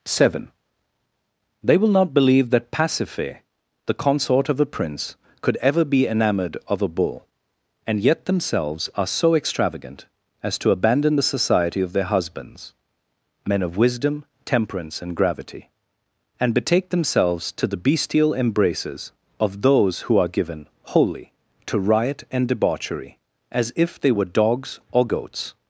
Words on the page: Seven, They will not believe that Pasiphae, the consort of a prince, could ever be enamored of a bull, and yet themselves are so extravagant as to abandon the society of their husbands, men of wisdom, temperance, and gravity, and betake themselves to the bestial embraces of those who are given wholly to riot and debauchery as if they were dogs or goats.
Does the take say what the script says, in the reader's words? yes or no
yes